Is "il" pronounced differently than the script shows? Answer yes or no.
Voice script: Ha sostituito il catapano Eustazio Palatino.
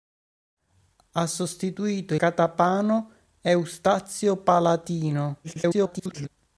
yes